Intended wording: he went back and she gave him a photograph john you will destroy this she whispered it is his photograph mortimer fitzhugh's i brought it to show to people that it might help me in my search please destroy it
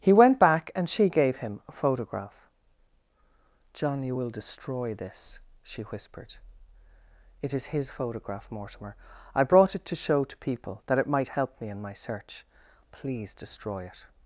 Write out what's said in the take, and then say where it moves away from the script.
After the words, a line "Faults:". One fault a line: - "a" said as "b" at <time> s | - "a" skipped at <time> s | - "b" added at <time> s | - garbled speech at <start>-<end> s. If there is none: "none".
he went back and she gave him a photograph john you will destroy this she whispered it is his photograph mortimer i brought it to show to people that it might help me in my search please destroy it
Faults:
- "fitzhugh's" skipped at 8.9 s